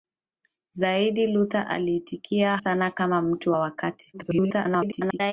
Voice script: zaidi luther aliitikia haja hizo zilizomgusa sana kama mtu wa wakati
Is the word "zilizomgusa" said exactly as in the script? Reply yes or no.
no